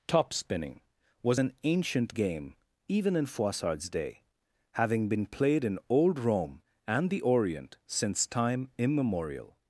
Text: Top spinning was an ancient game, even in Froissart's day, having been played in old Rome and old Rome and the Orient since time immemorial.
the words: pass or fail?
fail